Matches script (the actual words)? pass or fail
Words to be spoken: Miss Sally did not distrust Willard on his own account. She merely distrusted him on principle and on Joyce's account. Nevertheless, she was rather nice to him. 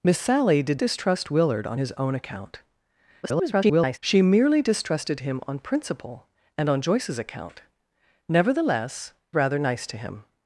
fail